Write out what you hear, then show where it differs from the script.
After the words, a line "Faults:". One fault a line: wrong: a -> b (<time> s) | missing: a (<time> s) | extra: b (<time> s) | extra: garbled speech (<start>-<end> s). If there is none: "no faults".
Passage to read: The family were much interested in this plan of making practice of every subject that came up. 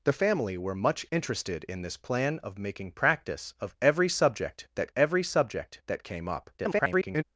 The family were much interested in this plan of making practice of every subject that every subject that came up. [garbled]
Faults:
extra: every subject that (5.0 s)
extra: garbled speech (6.6-7.2 s)